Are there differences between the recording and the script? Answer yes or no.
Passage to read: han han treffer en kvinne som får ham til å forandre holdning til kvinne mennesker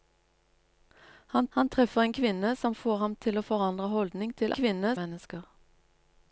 no